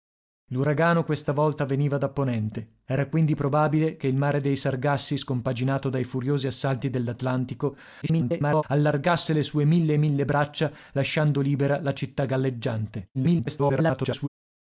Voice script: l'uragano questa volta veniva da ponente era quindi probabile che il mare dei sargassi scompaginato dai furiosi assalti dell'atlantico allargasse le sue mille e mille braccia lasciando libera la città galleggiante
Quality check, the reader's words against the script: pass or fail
fail